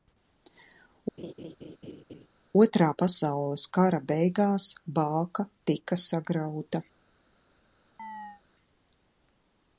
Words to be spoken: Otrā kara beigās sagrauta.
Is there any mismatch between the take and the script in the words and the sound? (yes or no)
yes